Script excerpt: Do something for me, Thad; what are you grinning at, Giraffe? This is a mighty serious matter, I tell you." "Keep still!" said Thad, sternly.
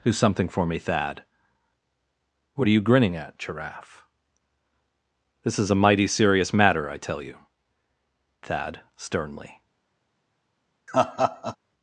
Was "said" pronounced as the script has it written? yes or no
no